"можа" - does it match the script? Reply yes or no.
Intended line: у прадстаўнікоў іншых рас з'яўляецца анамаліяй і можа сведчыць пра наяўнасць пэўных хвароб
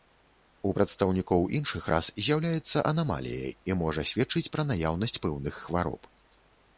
yes